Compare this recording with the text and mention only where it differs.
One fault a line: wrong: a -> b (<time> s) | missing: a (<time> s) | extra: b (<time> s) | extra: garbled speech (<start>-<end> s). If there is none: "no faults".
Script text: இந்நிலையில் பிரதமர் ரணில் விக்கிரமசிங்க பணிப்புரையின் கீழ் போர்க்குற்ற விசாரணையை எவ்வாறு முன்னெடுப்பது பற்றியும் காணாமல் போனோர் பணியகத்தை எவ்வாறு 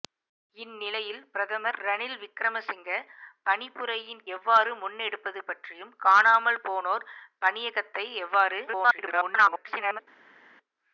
missing: கீழ் போர்க்குற்ற விசாரணையை (4.2 s)
extra: garbled speech (8.7-10.0 s)